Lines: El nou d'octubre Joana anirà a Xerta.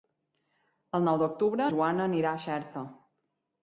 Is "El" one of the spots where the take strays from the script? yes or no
no